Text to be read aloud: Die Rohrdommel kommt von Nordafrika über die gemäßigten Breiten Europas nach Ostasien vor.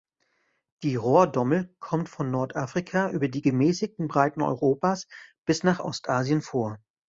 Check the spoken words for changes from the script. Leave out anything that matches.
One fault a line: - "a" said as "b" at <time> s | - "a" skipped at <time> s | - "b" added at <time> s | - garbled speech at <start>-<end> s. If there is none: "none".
- "bis" added at 5.4 s